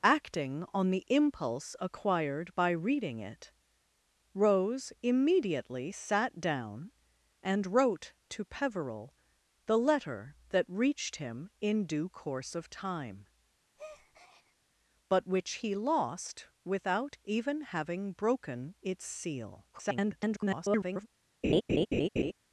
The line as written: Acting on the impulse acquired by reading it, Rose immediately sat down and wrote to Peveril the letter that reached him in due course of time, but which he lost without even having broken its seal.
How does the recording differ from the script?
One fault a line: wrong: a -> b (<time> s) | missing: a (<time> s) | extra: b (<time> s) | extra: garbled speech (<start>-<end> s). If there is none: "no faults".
extra: garbled speech (19.7-21.1 s)